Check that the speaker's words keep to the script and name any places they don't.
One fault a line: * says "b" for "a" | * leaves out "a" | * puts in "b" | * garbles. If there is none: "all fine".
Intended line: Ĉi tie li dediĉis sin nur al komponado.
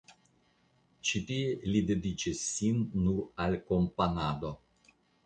all fine